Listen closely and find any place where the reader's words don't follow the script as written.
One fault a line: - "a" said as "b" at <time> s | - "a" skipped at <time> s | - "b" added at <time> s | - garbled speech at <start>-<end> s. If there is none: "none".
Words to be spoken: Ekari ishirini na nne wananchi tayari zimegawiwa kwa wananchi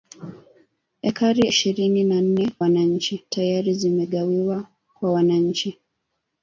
none